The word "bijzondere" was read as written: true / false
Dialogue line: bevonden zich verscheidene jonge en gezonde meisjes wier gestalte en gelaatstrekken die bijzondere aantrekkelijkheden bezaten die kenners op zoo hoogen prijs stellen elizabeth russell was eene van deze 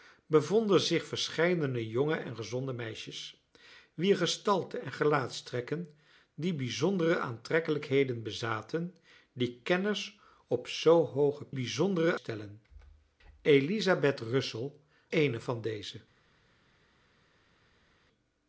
true